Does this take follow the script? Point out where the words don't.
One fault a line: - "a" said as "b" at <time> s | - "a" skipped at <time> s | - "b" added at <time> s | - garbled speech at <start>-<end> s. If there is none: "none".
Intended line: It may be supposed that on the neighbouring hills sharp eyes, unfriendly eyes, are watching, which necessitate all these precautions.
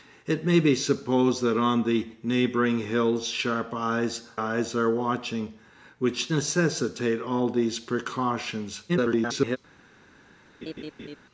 - "unfriendly" skipped at 4.2 s
- garbled speech at 8.9-9.6 s